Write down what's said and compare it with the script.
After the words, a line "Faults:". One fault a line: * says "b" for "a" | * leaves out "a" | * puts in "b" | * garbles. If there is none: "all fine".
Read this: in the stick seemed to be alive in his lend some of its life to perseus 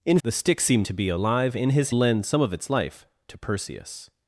in the stick seemed to be alive in his lend some of its life to perseus
Faults:
all fine